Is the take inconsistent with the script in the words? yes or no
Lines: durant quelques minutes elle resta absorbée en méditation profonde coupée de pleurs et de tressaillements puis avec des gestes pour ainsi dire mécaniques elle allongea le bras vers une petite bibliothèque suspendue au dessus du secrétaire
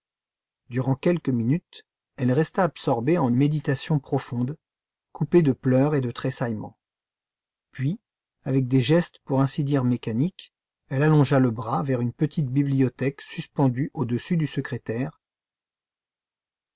no